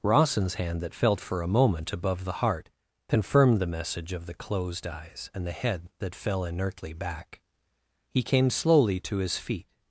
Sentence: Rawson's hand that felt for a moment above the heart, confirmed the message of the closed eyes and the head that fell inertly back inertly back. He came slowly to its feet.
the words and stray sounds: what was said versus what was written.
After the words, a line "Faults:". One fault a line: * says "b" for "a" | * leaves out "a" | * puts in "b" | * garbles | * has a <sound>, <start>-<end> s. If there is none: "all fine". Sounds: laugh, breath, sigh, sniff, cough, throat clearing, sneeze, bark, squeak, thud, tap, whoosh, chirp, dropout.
Rawson's hand that felt for a moment above the heart, confirmed the message of the closed eyes and the head that fell inertly back. He came slowly to his feet.
Faults:
* leaves out "inertly back"
* says "his" for "its"